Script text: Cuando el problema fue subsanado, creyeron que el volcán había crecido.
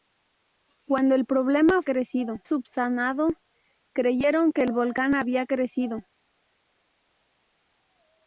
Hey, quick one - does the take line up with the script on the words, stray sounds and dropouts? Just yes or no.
no